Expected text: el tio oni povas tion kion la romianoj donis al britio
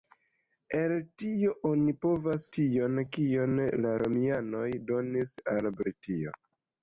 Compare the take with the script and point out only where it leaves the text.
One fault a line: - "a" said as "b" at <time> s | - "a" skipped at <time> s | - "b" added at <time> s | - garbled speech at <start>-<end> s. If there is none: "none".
none